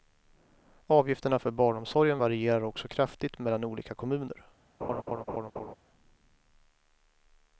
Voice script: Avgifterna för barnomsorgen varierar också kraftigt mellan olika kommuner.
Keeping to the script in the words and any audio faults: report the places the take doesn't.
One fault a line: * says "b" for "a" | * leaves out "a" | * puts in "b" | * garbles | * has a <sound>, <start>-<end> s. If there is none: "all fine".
* has a laugh, 4.8-5.8 s